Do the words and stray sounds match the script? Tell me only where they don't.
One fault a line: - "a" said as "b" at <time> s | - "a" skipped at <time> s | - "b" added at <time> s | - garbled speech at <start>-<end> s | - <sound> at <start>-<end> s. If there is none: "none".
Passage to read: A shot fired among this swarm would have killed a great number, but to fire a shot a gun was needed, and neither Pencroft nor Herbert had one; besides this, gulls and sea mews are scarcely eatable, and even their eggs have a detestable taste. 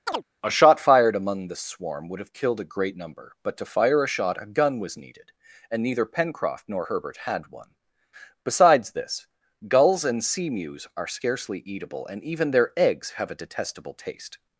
- chirp at 0.1-0.2 s
- "this" said as "the" at 1.5 s